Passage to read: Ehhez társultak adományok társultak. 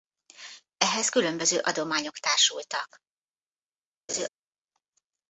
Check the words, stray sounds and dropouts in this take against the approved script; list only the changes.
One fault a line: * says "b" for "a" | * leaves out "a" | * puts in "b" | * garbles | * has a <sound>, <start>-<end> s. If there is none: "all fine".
* says "különböző" for "társultak"
* has a laugh, 4.1-4.3 s